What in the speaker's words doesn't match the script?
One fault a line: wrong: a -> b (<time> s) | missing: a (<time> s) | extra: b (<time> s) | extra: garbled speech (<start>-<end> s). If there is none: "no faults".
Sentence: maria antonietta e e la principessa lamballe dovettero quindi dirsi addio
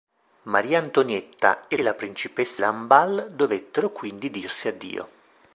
no faults